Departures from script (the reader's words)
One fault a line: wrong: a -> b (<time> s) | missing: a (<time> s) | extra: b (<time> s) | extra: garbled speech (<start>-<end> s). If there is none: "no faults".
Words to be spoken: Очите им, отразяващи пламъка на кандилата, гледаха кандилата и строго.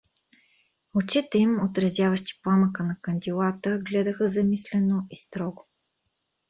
wrong: кандилата -> замислено (4.3 s)